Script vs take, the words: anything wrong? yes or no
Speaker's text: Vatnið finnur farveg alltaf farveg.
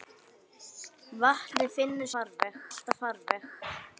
no